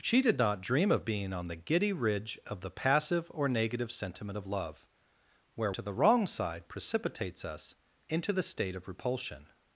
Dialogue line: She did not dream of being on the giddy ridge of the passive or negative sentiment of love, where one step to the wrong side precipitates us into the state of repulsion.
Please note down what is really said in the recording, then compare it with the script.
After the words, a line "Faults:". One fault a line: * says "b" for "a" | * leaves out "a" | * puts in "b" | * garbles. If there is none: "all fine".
She did not dream of being on the giddy ridge of the passive or negative sentiment of love, where to the wrong side precipitates us into the state of repulsion.
Faults:
* leaves out "one step"